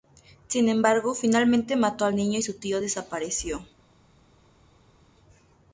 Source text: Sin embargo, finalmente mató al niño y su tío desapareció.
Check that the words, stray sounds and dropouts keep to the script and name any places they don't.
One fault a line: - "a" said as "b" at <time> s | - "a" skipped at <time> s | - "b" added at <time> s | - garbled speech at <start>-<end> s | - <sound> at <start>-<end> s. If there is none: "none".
none